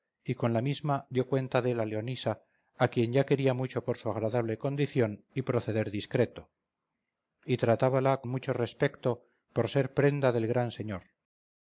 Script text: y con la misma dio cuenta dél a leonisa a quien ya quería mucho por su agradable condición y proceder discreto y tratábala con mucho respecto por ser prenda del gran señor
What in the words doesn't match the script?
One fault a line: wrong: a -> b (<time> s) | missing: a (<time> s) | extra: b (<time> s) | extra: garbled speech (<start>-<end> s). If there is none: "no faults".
missing: con (8.2 s)